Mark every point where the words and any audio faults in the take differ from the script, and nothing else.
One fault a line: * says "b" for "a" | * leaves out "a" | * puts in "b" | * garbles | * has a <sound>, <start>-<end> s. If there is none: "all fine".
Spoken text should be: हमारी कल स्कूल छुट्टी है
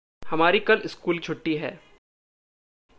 all fine